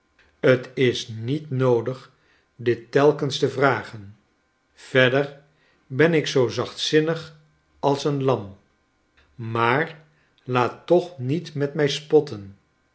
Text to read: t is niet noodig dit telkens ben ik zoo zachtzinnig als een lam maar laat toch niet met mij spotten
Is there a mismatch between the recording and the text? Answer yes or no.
yes